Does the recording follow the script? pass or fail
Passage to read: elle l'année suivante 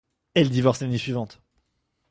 fail